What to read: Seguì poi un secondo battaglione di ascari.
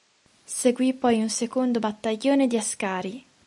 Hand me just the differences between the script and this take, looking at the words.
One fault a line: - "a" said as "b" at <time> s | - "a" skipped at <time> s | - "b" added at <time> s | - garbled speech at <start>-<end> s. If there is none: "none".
none